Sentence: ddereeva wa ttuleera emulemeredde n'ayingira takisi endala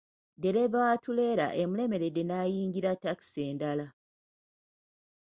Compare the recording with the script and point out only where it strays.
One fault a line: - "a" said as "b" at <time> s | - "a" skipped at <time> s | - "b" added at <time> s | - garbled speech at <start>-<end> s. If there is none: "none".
none